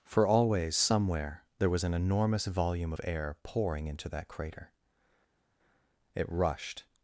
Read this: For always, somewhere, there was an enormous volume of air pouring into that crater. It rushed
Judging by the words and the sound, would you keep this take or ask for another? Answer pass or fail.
pass